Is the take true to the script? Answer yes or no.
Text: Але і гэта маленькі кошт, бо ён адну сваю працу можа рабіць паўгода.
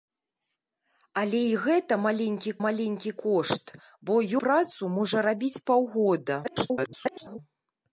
no